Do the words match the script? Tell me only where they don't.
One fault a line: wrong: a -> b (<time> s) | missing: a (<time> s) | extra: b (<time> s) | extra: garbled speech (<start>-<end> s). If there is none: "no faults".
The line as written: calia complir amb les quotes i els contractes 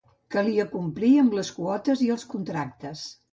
no faults